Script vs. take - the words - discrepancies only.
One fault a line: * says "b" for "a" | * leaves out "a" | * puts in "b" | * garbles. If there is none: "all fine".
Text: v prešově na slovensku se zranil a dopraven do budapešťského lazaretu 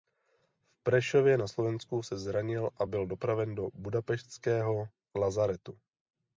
* puts in "byl"